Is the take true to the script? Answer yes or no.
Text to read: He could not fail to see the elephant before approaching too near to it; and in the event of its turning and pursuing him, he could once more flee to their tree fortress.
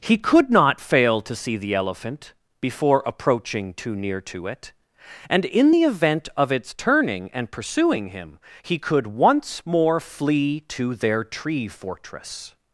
yes